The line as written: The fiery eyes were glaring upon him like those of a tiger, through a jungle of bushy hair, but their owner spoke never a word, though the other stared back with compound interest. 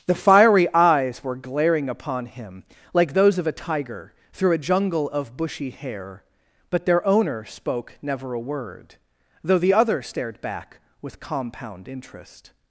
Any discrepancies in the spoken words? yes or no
no